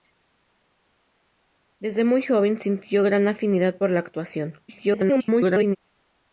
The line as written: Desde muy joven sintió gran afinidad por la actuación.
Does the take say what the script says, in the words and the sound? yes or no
no